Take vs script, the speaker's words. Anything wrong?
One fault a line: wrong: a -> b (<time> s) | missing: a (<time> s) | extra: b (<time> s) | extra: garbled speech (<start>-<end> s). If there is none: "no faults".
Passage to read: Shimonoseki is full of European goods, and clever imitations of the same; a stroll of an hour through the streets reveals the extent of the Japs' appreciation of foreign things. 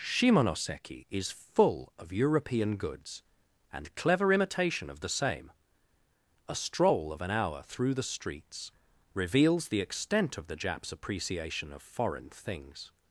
wrong: imitations -> imitation (4.3 s)